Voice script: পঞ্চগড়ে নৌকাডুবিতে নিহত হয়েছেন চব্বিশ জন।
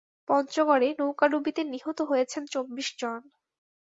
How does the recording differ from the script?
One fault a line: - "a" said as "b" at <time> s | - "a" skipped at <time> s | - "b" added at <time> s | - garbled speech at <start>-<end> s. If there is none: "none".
none